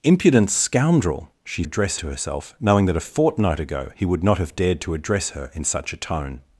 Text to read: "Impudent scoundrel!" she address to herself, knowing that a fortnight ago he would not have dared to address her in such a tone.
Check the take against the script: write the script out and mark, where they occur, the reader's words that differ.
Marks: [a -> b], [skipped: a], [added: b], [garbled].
"Impudent scoundrel!" she address to herself, knowing that a fortnight ago he would not have dared to address her in such a tone.